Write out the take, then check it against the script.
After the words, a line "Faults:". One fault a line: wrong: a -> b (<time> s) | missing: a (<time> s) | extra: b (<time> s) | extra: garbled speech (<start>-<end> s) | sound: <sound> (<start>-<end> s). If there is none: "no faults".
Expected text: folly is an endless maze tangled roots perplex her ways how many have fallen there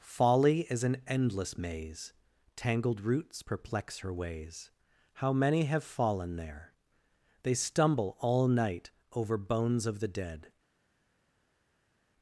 folly is an endless maze tangled roots perplex her ways how many have fallen there they stumble all night over bones of the dead
Faults:
extra: they stumble all night over bones of the dead (7.4 s)